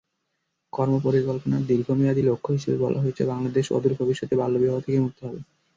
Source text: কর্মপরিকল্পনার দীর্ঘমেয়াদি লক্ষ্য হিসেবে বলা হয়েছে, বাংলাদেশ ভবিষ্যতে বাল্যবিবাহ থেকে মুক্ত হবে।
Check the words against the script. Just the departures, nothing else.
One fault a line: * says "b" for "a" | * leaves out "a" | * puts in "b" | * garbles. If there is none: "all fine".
* puts in "অদূর"